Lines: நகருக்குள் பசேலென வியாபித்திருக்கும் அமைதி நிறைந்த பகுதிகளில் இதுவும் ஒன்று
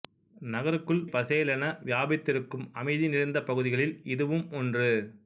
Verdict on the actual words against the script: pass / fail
pass